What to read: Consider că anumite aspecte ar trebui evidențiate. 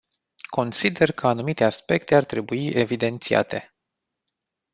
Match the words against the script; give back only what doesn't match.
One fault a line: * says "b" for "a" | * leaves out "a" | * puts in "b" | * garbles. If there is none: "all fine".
all fine